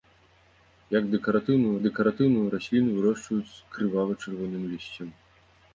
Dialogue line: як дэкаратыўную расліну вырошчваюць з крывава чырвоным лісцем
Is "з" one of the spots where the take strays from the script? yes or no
no